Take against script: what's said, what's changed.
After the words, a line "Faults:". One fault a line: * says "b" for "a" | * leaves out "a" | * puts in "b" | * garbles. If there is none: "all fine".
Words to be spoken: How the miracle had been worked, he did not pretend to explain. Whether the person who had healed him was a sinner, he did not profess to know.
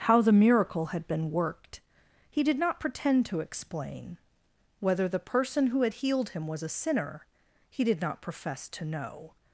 How the miracle had been worked, he did not pretend to explain. Whether the person who had healed him was a sinner, he did not profess to know.
Faults:
all fine